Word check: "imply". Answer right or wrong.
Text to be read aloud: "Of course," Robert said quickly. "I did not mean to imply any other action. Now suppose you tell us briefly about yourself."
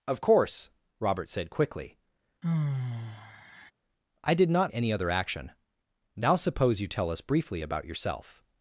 wrong